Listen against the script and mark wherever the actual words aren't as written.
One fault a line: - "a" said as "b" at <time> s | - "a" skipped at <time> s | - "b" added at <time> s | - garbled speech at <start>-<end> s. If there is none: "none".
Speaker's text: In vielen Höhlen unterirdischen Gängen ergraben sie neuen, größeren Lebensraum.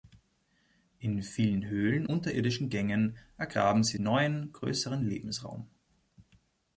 none